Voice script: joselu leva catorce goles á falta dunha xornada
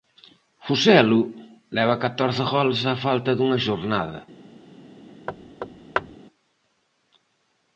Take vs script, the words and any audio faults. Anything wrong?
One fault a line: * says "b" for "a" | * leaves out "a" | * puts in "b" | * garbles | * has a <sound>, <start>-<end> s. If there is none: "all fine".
* has a thud, 5.3-6.2 s